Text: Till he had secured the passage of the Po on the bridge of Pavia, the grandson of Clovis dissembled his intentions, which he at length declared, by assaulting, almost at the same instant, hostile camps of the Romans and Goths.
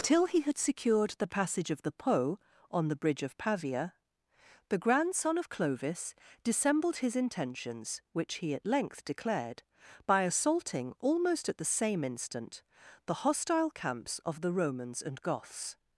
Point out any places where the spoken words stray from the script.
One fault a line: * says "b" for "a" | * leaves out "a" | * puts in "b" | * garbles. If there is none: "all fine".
* puts in "the"